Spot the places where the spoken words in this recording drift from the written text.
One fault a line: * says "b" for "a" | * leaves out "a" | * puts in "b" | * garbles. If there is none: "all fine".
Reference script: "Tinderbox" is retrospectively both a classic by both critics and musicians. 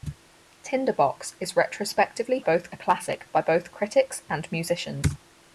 all fine